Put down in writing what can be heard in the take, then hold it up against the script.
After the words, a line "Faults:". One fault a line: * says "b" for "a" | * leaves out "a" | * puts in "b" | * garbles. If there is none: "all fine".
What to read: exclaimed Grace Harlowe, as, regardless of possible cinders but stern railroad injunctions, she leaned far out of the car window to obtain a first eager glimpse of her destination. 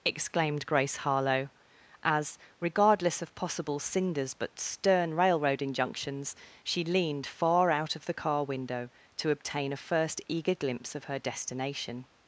exclaimed Grace Harlowe, as, regardless of possible cinders but stern railroad injunctions, she leaned far out of the car window to obtain a first eager glimpse of her destination.
Faults:
all fine